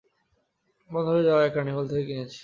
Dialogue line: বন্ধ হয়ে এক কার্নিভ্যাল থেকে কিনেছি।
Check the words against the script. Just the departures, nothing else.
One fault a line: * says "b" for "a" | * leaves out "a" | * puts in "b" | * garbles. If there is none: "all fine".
* puts in "যাওয়া"